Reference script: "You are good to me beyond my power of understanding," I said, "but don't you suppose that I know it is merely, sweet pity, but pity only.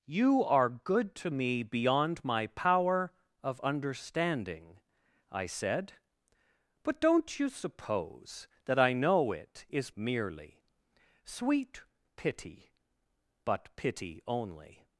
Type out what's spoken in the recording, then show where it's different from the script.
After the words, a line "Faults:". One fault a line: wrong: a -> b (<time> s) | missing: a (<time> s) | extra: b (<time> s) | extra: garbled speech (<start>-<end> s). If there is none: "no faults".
"You are good to me beyond my power of understanding," I said, "but don't you suppose that I know it is merely, sweet pity, but pity only.
Faults:
no faults